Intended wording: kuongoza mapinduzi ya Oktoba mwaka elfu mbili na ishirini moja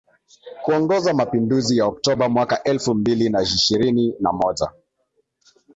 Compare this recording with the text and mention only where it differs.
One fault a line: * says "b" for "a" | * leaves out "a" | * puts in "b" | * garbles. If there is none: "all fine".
* puts in "na"